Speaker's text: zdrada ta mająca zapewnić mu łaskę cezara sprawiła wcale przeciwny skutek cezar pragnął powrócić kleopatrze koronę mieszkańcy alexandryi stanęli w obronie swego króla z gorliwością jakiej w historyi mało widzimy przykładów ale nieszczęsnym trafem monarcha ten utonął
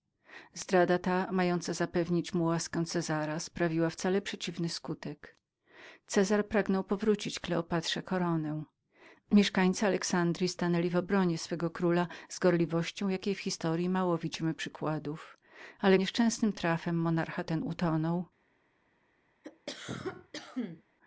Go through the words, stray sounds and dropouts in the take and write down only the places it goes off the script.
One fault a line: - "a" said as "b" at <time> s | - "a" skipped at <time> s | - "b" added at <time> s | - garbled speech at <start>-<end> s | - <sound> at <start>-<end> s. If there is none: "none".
- cough at 19.4-20.8 s